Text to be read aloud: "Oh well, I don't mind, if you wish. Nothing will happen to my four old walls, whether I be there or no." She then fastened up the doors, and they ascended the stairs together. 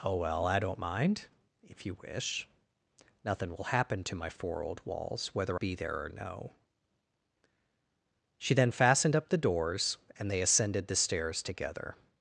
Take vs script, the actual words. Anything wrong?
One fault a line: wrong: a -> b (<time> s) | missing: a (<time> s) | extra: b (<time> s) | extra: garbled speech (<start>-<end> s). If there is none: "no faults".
missing: I (5.6 s)